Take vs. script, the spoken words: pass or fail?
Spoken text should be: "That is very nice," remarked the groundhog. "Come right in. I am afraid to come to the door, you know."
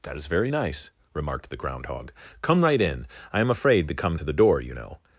pass